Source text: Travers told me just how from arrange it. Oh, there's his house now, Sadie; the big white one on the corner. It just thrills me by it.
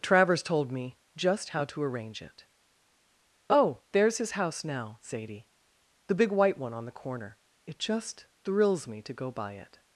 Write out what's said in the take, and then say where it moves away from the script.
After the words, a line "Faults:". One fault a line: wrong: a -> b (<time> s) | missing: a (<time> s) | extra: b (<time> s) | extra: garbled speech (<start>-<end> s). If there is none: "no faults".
Travers told me just how to arrange it. Oh, there's his house now, Sadie; the big white one on the corner. It just thrills me to go by it.
Faults:
wrong: from -> to (1.6 s)
extra: to go (9.0 s)